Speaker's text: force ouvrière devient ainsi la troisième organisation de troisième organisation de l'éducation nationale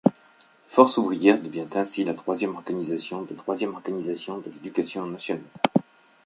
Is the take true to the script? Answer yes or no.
yes